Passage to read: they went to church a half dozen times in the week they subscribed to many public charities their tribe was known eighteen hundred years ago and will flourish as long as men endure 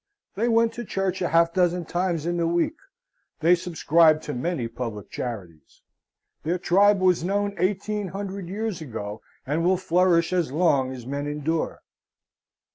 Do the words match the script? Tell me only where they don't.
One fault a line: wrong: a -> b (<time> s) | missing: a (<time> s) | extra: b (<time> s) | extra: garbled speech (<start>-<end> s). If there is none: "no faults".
no faults